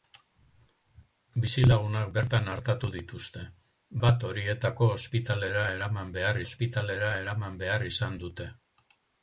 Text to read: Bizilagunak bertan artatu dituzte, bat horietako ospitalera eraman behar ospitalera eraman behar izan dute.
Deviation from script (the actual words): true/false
false